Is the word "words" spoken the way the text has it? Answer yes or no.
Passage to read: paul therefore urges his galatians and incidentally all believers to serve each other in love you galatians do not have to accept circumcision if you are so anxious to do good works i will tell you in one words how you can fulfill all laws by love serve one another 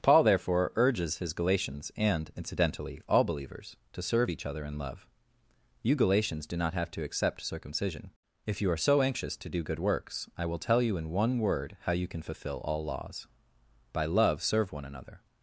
no